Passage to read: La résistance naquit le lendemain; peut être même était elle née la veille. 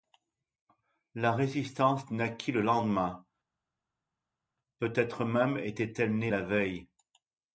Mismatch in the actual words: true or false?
false